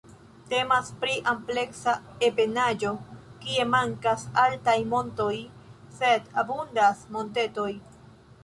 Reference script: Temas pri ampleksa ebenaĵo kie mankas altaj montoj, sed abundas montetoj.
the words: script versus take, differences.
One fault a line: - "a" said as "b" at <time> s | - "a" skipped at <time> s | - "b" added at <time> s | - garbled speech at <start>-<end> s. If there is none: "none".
none